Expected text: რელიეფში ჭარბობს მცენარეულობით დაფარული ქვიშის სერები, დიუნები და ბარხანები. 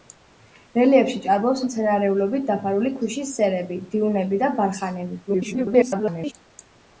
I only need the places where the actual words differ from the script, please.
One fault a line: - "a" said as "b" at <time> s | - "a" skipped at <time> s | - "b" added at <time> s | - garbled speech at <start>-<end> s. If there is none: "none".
- garbled speech at 5.3-6.3 s